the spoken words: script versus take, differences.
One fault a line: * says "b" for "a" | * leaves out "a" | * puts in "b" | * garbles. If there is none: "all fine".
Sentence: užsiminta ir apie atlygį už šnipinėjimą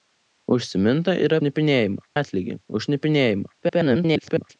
* says "šnipinėjimą" for "apie"
* garbles